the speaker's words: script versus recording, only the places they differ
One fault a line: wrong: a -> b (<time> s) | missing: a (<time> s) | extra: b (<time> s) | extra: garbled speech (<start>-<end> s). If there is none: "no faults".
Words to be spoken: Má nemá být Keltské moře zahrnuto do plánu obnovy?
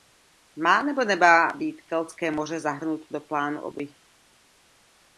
extra: nebo (0.8 s)